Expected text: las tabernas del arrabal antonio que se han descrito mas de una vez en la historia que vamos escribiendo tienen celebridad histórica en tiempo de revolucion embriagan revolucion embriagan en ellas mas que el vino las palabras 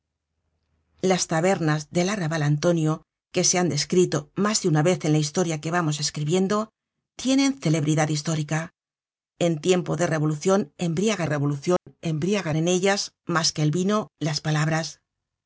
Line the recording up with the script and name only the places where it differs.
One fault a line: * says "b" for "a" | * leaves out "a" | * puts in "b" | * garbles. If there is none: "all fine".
all fine